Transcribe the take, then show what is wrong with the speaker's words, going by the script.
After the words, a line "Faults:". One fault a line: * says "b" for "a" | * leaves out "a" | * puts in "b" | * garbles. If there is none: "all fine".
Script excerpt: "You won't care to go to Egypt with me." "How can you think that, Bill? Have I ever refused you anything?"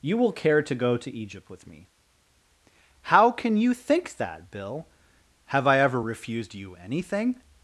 "You will care to go to Egypt with me." "How can you think that, Bill? Have I ever refused you anything?"
Faults:
* says "will" for "won't"